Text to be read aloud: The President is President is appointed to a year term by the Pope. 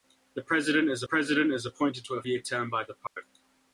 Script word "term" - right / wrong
right